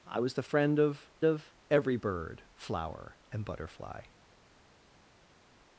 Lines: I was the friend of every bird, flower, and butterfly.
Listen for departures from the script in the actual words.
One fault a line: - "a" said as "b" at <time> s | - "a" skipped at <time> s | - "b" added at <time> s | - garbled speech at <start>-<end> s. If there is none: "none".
- "of" added at 1.2 s